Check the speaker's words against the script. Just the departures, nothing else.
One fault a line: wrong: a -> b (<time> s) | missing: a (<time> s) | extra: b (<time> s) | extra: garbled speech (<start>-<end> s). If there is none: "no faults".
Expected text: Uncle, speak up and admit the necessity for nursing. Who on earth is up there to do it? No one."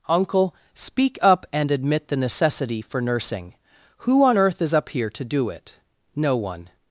wrong: there -> here (4.9 s)